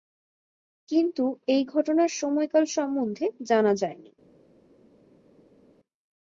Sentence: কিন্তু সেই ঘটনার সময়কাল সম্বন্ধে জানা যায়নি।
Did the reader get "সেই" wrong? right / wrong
wrong